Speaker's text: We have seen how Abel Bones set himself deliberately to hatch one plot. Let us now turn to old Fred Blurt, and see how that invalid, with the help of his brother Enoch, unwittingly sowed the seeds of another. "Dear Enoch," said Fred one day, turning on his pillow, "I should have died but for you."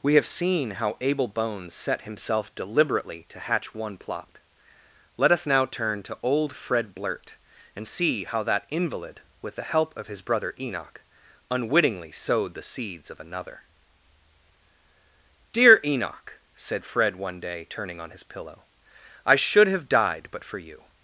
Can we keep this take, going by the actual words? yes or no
yes